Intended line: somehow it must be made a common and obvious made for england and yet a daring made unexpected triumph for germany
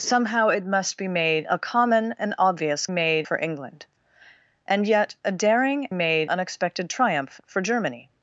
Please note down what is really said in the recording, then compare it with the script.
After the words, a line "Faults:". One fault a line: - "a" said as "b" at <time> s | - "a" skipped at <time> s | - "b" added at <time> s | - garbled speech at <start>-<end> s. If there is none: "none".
somehow it must be made a common and obvious made for england and yet a daring made unexpected triumph for germany
Faults:
none